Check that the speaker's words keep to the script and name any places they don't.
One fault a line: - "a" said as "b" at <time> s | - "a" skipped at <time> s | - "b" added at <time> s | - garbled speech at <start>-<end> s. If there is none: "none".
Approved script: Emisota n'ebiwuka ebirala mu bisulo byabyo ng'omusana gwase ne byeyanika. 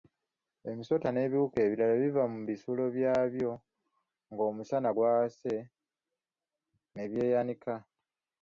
- "biva" added at 2.0 s